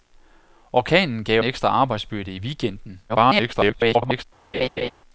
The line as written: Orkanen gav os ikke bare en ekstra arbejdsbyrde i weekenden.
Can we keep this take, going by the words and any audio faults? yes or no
no